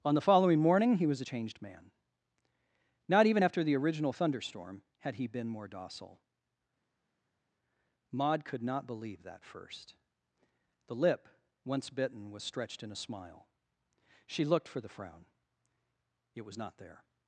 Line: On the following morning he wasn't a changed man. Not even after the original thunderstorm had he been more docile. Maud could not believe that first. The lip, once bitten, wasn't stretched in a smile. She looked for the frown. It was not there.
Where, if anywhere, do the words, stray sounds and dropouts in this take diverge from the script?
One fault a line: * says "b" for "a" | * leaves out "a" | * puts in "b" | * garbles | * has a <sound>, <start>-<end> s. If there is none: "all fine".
* says "was" for "wasn't"
* says "was" for "wasn't"